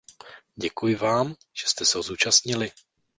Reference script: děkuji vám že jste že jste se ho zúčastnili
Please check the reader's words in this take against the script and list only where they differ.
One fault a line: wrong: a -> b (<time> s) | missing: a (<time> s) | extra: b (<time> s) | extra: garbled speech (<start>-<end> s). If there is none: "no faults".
missing: že jste (1.8 s)